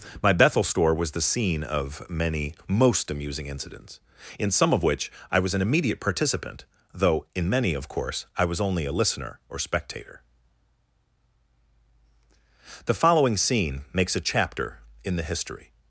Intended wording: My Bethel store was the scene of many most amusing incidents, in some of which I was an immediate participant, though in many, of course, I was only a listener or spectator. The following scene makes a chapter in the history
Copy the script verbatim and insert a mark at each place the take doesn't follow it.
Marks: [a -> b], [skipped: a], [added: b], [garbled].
My Bethel store was the scene of many most amusing incidents, in some of which I was an immediate participant, though in many, of course, I was only a listener or spectator. The following scene makes a chapter in the history